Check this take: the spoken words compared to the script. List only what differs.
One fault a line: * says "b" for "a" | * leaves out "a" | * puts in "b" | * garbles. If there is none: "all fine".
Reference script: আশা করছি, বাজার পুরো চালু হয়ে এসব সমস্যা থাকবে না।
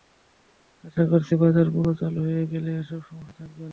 * puts in "গেলে"